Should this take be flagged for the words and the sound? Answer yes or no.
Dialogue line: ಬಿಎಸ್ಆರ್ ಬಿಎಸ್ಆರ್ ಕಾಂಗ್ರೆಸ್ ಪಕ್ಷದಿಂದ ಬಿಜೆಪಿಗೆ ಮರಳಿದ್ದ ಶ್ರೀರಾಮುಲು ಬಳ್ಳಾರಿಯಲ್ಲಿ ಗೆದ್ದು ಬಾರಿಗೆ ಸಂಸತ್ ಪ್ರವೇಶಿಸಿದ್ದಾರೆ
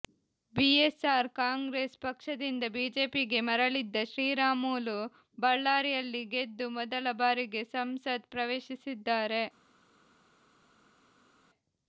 yes